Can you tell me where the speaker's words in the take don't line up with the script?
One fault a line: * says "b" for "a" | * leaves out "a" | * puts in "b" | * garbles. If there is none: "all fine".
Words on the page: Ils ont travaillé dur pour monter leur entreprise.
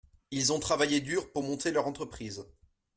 all fine